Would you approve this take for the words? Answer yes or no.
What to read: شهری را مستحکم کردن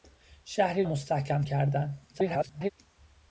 no